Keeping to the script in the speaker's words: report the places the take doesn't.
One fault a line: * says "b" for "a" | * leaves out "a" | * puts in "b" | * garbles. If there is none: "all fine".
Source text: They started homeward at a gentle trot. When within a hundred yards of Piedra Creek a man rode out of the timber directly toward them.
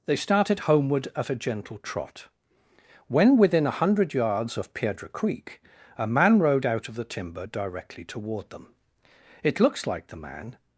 * puts in "It looks like the man"